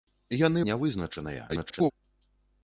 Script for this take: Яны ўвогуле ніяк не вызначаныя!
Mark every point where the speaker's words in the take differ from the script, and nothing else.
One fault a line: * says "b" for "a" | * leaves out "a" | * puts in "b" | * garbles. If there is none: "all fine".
* leaves out "ўвогуле ніяк"
* garbles